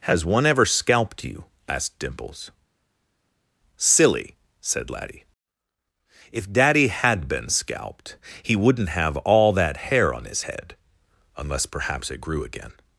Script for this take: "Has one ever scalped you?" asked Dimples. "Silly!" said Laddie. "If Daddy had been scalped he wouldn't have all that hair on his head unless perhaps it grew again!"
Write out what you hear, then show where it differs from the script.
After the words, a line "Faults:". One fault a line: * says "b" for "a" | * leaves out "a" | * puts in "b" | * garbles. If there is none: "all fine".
"Has one ever scalped you?" asked Dimples. "Silly!" said Laddie. "If Daddy had been scalped he wouldn't have all that hair on his head unless perhaps it grew again!"
Faults:
all fine